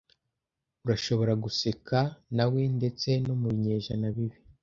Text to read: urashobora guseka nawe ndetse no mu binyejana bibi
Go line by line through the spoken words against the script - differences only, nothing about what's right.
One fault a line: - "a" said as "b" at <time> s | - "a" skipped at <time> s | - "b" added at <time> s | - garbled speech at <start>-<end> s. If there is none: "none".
none